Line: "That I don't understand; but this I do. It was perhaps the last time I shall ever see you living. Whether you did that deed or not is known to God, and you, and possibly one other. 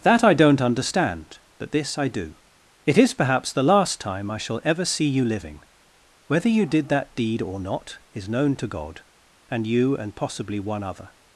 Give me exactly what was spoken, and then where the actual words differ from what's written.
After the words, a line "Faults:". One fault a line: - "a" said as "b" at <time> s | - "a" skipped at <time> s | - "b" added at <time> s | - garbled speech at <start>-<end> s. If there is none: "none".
"That I don't understand; but this I do. It is perhaps the last time I shall ever see you living. Whether you did that deed or not is known to God, and you, and possibly one other.
Faults:
- "was" said as "is" at 3.0 s